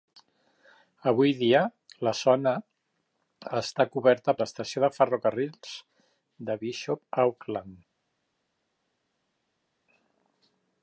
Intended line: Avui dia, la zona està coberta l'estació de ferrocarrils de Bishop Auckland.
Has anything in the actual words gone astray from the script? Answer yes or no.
no